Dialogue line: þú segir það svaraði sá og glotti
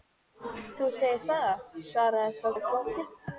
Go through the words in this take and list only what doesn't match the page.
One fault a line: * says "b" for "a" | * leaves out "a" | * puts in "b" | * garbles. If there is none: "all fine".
all fine